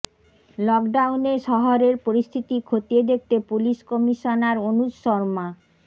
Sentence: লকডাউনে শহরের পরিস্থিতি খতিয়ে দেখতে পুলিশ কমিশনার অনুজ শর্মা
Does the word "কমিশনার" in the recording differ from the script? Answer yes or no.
no